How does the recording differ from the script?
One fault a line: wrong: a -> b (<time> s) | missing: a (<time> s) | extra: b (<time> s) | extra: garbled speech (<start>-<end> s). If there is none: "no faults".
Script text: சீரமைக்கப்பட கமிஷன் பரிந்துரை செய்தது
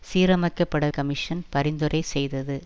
no faults